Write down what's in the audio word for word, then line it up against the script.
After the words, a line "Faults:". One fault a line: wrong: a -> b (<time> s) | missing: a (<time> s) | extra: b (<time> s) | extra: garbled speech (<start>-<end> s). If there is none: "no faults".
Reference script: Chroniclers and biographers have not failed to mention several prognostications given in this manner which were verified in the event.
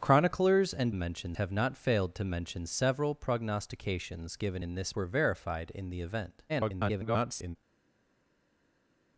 Chroniclers and mention have not failed to mention several prognostications given in this were verified in the event. [garbled]
Faults:
wrong: biographers -> mention (0.9 s)
missing: manner which (5.0 s)
extra: garbled speech (6.5-7.6 s)